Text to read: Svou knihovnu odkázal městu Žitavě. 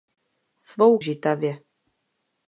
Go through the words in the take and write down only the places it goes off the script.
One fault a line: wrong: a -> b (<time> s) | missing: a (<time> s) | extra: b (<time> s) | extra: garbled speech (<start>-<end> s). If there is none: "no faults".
missing: knihovnu odkázal městu (1.0 s)